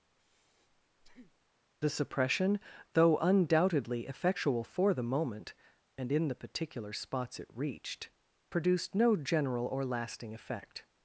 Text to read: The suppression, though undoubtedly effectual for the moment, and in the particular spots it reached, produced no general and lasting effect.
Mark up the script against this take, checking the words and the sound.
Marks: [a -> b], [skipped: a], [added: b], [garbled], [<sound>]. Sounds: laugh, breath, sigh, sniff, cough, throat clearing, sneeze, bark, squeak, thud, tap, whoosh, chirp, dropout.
[breath] The suppression, though undoubtedly effectual for the moment, and in the particular spots it reached, produced no general [and -> or] lasting effect.